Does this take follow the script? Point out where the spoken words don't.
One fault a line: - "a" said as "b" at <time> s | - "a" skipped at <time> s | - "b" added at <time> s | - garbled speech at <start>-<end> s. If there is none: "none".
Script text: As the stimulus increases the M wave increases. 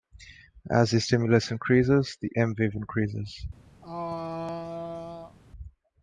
none